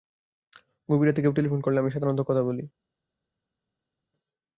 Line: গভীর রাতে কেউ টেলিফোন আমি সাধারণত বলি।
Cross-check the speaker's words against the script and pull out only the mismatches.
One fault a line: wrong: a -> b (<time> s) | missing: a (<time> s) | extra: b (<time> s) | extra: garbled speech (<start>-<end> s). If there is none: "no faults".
extra: করলে (1.6 s)
extra: কথা (2.3 s)